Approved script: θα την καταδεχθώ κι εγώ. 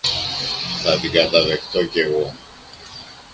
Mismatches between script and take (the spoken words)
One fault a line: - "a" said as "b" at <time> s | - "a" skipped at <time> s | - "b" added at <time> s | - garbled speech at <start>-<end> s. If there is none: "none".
none